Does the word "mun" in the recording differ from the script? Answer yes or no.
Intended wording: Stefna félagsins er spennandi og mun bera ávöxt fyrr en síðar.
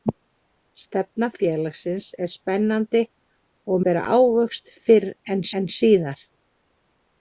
yes